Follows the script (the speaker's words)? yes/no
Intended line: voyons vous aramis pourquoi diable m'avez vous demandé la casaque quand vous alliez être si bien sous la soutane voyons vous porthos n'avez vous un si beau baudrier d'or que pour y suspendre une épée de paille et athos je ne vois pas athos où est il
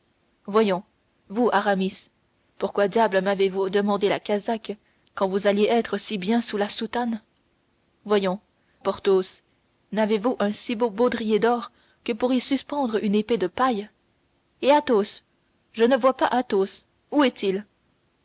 no